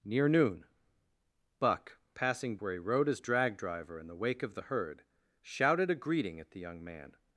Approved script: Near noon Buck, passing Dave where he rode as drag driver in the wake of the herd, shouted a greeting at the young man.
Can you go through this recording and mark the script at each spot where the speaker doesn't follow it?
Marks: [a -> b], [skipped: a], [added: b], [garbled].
Near noon Buck, passing [skipped: Dave] where he rode as drag driver in the wake of the herd, shouted a greeting at the young man.